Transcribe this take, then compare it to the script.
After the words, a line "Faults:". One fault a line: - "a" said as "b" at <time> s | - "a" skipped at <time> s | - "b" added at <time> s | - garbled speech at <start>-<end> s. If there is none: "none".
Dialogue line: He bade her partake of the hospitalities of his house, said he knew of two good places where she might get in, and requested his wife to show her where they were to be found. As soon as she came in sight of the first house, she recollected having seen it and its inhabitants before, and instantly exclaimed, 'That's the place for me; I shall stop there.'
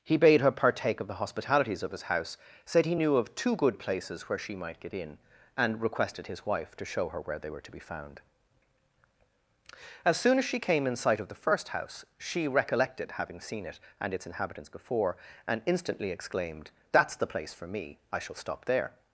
He bade her partake of the hospitalities of his house, said he knew of two good places where she might get in, and requested his wife to show her where they were to be found. As soon as she came in sight of the first house, she recollected having seen it and its inhabitants before, and instantly exclaimed, 'That's the place for me; I shall stop there.'
Faults:
none